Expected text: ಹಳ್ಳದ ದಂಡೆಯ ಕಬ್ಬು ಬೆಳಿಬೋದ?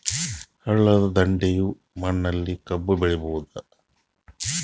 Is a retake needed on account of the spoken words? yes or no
yes